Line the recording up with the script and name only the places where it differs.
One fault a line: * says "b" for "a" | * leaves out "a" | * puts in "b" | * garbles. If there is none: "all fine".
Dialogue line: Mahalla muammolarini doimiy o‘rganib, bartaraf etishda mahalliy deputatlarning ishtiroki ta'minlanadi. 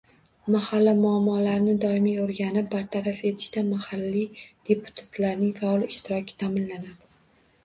* puts in "faol"